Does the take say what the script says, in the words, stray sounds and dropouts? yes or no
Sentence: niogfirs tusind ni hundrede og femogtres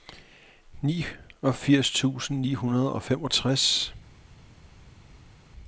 yes